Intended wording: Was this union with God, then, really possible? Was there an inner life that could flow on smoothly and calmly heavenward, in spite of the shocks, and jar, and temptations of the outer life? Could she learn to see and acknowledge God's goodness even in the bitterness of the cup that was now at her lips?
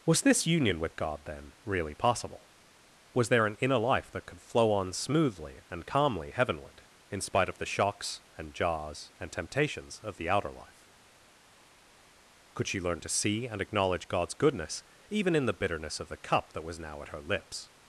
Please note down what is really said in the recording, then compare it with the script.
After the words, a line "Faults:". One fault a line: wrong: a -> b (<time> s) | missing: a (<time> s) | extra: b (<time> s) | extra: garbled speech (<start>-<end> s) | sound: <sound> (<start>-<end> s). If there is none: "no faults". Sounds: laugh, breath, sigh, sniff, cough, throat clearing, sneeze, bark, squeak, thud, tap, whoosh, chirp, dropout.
Was this union with God, then, really possible? Was there an inner life that could flow on smoothly and calmly heavenward, in spite of the shocks, and jars, and temptations of the outer life? Could she learn to see and acknowledge God's goodness even in the bitterness of the cup that was now at her lips?
Faults:
wrong: jar -> jars (8.5 s)